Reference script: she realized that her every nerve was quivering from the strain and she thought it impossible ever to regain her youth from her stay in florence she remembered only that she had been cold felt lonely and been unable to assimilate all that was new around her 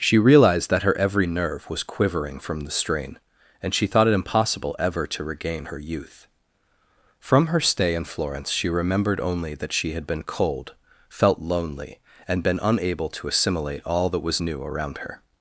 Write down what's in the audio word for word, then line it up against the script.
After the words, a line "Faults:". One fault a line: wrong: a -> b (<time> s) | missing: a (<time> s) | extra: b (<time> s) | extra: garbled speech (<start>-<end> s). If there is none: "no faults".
she realized that her every nerve was quivering from the strain and she thought it impossible ever to regain her youth from her stay in florence she remembered only that she had been cold felt lonely and been unable to assimilate all that was new around her
Faults:
no faults